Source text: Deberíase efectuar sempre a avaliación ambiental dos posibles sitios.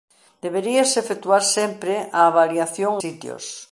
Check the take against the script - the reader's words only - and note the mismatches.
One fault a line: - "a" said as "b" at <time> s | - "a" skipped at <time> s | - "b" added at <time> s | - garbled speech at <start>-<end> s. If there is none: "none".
- "ambiental dos posibles" skipped at 2.9 s